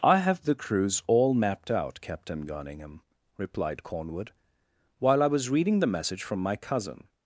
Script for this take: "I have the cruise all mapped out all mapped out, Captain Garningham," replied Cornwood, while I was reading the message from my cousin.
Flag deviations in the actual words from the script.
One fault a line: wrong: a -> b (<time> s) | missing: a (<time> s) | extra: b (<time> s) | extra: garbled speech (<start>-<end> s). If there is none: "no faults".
missing: all mapped out (2.0 s)